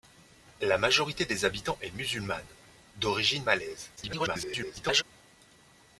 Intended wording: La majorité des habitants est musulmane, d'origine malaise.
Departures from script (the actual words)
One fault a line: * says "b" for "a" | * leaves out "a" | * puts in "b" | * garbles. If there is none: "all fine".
* garbles